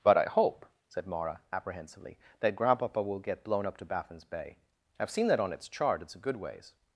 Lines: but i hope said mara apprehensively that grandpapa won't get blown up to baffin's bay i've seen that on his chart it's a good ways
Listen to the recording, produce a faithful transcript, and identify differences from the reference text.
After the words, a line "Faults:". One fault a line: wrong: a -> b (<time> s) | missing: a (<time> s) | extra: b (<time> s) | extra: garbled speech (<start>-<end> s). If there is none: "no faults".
but i hope said mara apprehensively that grandpapa will get blown up to baffin's bay i've seen that on its chart it's a good ways
Faults:
wrong: won't -> will (3.0 s)
wrong: his -> its (5.5 s)